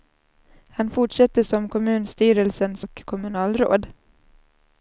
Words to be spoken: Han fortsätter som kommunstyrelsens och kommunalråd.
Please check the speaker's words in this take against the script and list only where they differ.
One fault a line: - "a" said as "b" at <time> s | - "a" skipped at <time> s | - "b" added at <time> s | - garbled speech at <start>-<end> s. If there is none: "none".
none